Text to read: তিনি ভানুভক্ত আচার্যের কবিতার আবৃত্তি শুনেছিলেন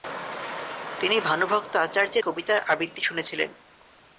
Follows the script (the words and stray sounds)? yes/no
yes